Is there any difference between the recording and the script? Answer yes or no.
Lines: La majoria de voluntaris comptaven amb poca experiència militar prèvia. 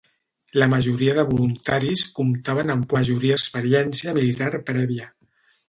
yes